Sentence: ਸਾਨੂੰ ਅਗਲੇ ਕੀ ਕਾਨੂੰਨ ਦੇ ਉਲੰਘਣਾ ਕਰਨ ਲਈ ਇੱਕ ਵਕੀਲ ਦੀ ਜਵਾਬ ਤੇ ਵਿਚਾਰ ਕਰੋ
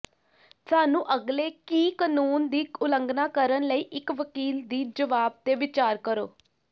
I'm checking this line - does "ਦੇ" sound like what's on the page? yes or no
no